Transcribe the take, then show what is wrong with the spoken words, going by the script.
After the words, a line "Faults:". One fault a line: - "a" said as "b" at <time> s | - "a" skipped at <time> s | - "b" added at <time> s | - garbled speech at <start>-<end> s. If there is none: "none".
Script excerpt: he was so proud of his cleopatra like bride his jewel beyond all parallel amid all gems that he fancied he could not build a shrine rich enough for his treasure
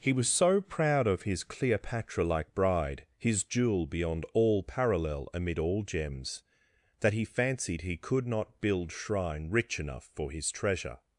he was so proud of his cleopatra like bride his jewel beyond all parallel amid all gems that he fancied he could not build shrine rich enough for his treasure
Faults:
- "a" skipped at 8.9 s